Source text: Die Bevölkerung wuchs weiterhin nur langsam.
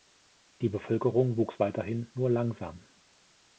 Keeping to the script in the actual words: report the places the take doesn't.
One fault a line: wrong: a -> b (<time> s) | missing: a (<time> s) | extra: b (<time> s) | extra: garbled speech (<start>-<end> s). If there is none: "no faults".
no faults